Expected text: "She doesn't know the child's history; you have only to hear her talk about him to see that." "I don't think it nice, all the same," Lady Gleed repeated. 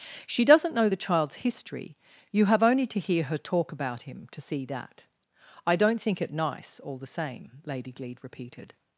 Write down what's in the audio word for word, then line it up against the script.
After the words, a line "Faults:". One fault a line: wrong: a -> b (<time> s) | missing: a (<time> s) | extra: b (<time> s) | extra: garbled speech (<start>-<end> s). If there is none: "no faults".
"She doesn't know the child's history; you have only to hear her talk about him to see that." "I don't think it nice, all the same," Lady Gleed repeated.
Faults:
no faults